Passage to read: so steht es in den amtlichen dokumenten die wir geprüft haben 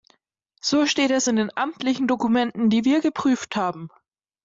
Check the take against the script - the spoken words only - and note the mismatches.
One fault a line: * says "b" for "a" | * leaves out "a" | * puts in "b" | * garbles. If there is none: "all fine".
all fine